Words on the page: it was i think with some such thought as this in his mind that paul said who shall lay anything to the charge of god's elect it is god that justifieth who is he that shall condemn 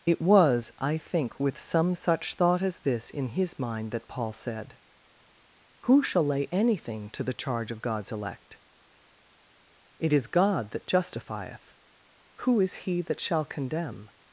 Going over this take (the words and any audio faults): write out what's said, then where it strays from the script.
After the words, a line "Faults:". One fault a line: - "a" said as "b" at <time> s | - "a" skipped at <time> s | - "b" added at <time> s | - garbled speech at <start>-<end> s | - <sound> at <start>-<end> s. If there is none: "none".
it was i think with some such thought as this in his mind that paul said who shall lay anything to the charge of god's elect it is god that justifieth who is he that shall condemn
Faults:
none